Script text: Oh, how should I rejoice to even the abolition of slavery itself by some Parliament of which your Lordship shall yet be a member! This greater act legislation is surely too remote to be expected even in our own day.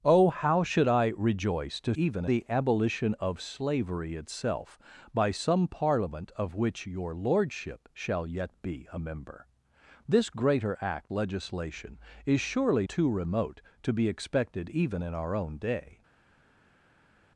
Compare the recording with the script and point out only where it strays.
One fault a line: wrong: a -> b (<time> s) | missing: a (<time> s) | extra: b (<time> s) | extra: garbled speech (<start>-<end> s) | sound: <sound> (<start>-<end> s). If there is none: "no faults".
no faults